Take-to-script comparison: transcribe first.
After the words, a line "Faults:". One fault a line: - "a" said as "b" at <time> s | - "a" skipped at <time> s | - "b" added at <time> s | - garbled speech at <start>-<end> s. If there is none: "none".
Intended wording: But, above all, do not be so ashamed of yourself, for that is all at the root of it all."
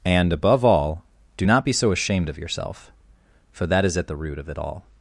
And, above all, do not be so ashamed of yourself, for that is at the root of it all."
Faults:
- "But" said as "And" at 0.0 s
- "all" skipped at 4.0 s